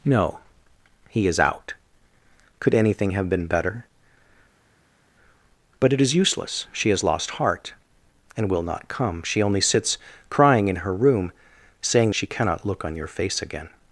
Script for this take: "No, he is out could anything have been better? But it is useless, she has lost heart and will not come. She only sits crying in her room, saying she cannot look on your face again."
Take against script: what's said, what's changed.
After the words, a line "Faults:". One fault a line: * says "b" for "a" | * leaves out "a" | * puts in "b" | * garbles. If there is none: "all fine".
"No, he is out could anything have been better? But it is useless, she has lost heart and will not come. She only sits crying in her room, saying she cannot look on your face again."
Faults:
all fine